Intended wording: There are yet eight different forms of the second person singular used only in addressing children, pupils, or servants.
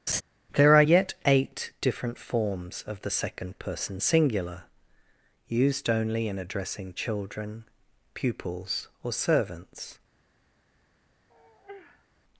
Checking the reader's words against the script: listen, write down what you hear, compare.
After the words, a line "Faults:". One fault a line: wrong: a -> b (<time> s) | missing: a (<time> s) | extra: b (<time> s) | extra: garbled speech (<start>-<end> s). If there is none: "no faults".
There are yet eight different forms of the second person singular used only in addressing children, pupils, or servants.
Faults:
no faults